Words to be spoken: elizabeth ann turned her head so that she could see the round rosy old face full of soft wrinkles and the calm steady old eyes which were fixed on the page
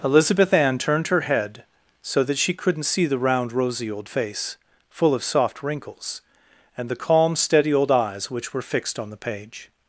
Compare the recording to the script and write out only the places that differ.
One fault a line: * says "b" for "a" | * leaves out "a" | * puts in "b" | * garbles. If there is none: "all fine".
* says "couldn't" for "could"